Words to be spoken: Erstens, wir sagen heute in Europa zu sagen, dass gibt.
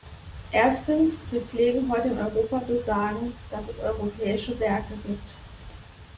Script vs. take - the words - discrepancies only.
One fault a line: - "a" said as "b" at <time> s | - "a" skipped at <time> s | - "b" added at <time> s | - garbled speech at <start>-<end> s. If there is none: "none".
- "sagen" said as "pflegen" at 1.4 s
- "es europäische Werke" added at 3.7 s